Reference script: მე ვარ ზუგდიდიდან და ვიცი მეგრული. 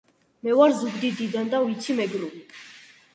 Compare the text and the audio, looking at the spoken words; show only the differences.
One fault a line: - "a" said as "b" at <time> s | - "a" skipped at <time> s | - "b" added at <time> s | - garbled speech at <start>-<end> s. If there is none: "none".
none